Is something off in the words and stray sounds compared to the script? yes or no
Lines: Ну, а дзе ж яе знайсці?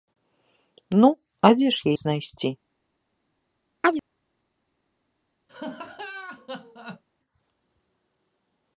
yes